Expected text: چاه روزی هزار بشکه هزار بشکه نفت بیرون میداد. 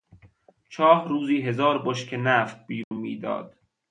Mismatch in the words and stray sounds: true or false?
true